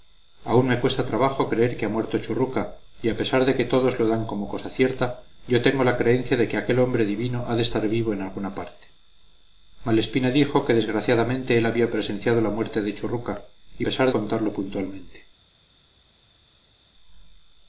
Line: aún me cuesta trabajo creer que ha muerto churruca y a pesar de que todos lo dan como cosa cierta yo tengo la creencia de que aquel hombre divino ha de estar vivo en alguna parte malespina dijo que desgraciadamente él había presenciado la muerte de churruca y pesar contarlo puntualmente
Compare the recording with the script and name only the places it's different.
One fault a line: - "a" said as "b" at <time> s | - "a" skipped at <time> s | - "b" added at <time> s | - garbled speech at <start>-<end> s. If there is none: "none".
none